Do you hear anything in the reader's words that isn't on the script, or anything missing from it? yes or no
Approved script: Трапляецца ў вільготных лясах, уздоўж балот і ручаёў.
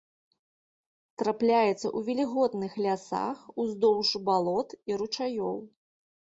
no